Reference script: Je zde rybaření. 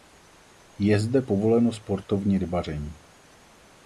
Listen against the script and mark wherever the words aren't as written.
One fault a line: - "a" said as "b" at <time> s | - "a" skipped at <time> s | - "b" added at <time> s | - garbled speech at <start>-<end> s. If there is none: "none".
- "povoleno sportovní" added at 1.2 s